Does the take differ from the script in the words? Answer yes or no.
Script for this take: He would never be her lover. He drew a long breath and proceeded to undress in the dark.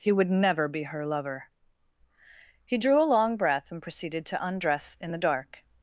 no